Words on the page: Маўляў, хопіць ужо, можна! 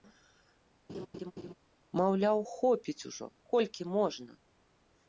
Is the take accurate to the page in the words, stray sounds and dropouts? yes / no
no